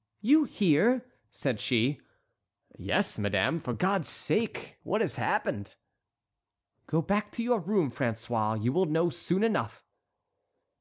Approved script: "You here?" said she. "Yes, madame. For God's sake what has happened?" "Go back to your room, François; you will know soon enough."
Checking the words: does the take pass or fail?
pass